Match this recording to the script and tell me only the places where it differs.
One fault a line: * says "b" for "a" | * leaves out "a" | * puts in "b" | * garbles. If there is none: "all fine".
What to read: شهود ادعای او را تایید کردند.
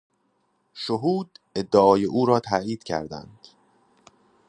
all fine